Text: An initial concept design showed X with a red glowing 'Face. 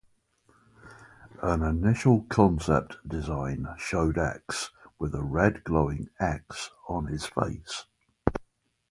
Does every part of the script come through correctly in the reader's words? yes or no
no